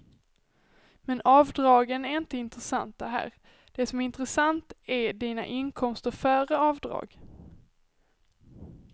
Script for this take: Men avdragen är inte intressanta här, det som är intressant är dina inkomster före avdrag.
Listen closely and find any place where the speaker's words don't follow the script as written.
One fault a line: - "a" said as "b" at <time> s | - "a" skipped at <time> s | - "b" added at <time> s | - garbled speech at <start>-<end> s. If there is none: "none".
none